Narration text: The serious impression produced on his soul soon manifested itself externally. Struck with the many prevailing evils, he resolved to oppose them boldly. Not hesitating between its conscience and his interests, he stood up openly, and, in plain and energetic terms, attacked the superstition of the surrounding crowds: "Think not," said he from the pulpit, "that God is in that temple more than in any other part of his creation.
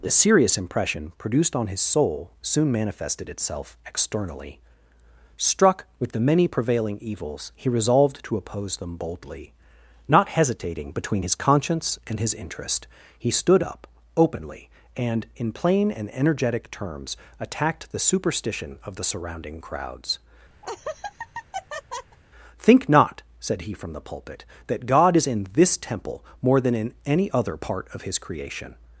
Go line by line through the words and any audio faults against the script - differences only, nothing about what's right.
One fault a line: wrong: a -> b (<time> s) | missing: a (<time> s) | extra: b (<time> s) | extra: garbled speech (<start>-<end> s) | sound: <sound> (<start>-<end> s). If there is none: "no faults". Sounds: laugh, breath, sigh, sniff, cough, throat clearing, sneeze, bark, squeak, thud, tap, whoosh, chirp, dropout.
wrong: its -> his (11.2 s)
wrong: interests -> interest (12.4 s)
sound: laugh (20.6-22.2 s)
wrong: that -> this (25.5 s)